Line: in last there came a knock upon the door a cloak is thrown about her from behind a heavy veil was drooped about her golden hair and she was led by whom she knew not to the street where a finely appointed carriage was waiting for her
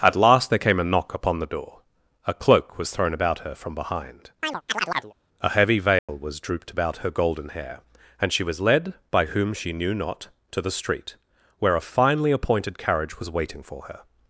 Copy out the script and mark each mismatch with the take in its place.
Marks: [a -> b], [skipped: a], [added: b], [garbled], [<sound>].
[in -> at] last there came a knock upon the door a cloak [is -> was] thrown about her from behind [chirp] a heavy veil [dropout] was drooped about her golden hair and she was led by whom she knew not to the street where a finely appointed carriage was waiting for her